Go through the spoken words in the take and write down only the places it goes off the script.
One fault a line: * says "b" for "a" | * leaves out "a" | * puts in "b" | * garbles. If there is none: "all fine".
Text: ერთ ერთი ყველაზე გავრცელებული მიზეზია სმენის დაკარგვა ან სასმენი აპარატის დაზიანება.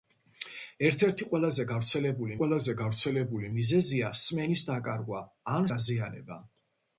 * puts in "ყველაზე გავრცელებული"
* leaves out "სასმენი აპარატის"